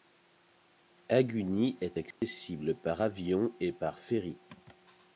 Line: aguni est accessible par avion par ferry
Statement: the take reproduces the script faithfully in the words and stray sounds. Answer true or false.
false